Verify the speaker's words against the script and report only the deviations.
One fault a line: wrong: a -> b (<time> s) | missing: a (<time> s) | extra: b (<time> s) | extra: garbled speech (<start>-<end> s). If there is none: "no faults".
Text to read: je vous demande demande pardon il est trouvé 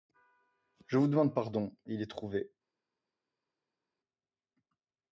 missing: demande (1.4 s)